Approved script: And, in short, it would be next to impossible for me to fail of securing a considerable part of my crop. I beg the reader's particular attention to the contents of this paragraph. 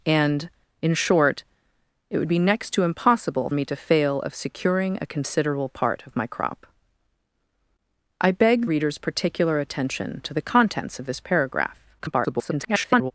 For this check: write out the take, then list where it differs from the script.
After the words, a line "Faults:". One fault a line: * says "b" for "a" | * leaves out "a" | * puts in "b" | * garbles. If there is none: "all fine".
And, in short, it would be next to impossible me to fail of securing a considerable part of my crop. I beg reader's particular attention to the contents of this paragraph. [garbled]
Faults:
* leaves out "for"
* leaves out "the"
* garbles